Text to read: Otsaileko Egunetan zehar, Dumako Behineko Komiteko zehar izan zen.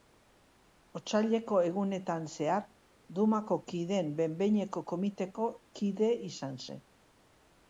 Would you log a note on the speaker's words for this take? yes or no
yes